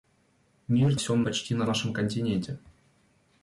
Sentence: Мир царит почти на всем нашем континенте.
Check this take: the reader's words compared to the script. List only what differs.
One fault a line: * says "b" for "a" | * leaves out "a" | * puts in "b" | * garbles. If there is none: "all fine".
* says "всем" for "царит"
* leaves out "всем"